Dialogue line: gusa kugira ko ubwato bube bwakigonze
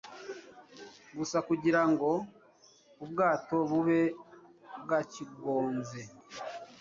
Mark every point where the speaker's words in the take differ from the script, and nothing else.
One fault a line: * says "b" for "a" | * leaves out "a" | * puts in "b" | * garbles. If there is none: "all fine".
* says "ngo" for "ko"